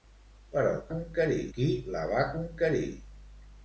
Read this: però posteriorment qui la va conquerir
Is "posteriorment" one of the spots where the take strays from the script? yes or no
yes